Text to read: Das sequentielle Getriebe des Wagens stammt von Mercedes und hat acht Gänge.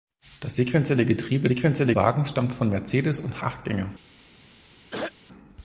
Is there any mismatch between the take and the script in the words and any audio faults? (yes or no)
yes